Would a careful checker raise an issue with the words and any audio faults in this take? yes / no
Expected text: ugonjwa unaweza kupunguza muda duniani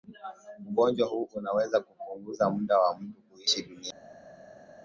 yes